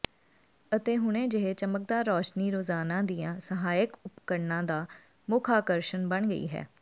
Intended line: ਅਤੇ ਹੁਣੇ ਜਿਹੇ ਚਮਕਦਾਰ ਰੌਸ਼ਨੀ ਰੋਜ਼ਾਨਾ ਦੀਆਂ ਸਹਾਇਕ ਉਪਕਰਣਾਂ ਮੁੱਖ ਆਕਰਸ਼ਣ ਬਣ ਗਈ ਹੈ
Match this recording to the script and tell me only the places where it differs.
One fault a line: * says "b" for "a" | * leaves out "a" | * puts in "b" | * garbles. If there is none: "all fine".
* puts in "ਦਾ"